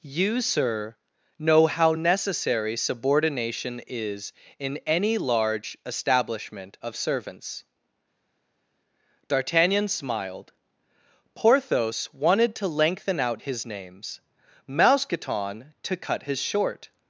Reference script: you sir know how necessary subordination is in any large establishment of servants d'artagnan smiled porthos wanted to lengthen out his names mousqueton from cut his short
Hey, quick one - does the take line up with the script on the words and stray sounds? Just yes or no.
no